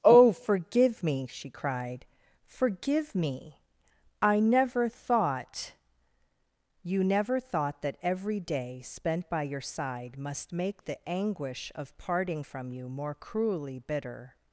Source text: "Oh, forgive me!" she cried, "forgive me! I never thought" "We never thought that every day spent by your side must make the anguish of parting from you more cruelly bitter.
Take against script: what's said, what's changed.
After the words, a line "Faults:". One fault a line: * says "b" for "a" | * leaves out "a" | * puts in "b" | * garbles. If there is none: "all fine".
"Oh, forgive me!" she cried, "forgive me! I never thought" "You never thought that every day spent by your side must make the anguish of parting from you more cruelly bitter.
Faults:
* says "You" for "We"